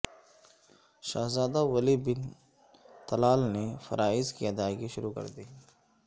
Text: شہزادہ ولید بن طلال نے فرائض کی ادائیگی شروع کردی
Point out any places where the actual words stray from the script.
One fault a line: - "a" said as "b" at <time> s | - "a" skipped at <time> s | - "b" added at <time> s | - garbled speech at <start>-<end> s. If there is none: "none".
none